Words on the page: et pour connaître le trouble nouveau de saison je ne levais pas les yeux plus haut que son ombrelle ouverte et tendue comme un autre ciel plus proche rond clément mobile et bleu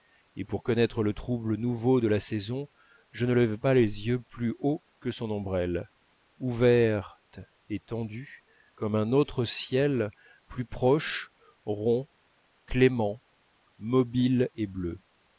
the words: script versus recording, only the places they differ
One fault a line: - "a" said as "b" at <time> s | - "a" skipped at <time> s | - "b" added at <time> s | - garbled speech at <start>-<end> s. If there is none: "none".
- "la" added at 2.1 s